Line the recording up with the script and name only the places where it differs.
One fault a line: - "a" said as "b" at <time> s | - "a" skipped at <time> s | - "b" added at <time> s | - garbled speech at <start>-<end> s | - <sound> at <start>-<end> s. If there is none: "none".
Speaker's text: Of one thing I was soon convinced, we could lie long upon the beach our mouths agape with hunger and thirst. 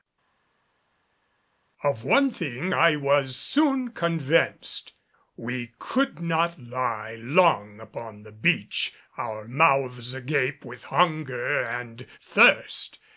- "not" added at 6.2 s